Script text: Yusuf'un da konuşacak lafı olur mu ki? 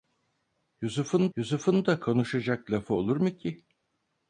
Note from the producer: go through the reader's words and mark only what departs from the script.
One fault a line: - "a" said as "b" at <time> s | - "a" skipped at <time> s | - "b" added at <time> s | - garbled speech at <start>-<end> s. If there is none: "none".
- "yusuf'un" added at 1.4 s